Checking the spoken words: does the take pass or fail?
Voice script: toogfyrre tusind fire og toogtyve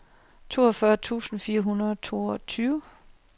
fail